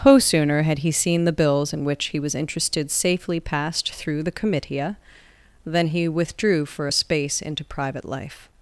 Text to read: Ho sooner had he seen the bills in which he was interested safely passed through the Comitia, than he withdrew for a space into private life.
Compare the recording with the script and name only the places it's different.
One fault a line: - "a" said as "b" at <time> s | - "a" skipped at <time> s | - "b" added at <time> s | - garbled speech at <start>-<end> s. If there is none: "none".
none